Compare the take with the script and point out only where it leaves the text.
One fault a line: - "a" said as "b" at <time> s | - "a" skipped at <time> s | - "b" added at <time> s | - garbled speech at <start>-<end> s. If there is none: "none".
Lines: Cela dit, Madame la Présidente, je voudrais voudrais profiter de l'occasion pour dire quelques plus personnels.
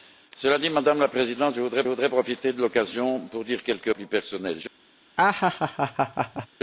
none